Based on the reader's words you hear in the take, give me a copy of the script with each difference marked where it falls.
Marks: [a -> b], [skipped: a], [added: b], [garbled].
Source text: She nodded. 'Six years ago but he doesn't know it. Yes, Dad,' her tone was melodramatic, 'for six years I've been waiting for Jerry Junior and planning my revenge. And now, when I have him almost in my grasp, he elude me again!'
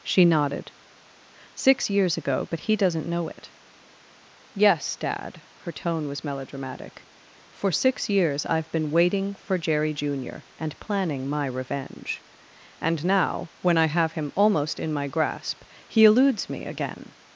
She nodded. 'Six years ago but he doesn't know it. Yes, Dad,' her tone was melodramatic, 'for six years I've been waiting for Jerry Junior and planning my revenge. And now, when I have him almost in my grasp, he [elude -> eludes] me again!'